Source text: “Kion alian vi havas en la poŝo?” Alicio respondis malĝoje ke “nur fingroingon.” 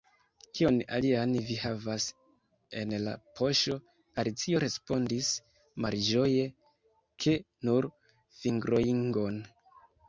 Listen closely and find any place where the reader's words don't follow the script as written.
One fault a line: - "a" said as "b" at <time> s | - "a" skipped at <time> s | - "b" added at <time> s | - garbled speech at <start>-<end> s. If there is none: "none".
none